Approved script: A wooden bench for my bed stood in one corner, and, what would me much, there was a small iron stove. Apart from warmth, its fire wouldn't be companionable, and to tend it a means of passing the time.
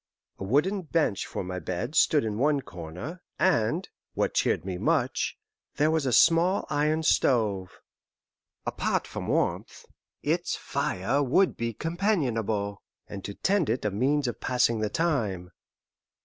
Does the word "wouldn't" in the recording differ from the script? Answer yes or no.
yes